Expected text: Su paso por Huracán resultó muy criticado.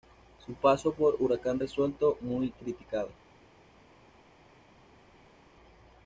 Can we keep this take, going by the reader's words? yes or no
yes